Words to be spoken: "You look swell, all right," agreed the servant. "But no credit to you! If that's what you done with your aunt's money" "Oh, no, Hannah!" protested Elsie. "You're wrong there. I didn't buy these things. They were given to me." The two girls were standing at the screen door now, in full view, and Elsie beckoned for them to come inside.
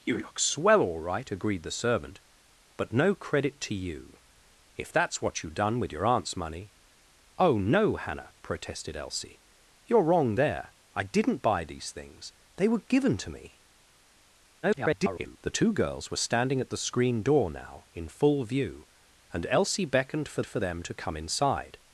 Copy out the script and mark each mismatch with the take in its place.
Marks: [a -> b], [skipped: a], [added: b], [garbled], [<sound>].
"You look swell, all right," agreed the servant. "But no credit to you! If that's what you done with your aunt's money" "Oh, no, Hannah!" protested Elsie. "You're wrong there. I didn't buy these things. They were given to me." [garbled] The two girls were standing at the screen door now, in full view, and Elsie beckoned for [added: for] them to come inside.